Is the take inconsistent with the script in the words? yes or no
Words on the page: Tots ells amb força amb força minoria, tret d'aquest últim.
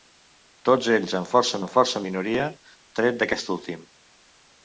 no